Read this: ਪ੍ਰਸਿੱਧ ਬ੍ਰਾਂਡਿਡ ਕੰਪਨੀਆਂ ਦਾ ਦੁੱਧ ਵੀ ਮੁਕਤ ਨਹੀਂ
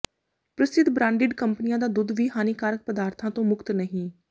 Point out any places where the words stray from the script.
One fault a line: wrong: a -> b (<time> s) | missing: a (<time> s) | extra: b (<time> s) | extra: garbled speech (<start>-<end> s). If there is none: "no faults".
extra: ਹਾਨੀਕਾਰਕ ਪਦਾਰਥਾਂ ਤੋਂ (2.4 s)